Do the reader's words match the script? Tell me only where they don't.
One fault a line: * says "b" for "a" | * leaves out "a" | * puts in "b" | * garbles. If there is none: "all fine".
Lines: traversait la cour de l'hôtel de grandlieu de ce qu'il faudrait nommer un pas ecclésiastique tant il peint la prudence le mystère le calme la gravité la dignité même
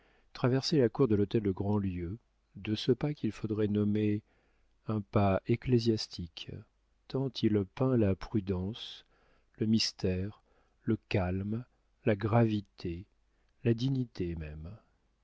* puts in "pas"